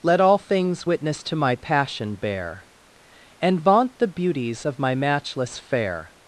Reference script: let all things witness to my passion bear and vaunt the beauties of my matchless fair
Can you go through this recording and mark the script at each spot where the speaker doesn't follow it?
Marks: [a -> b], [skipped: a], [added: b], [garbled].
let all things witness to my passion bear and vaunt the beauties of my matchless fair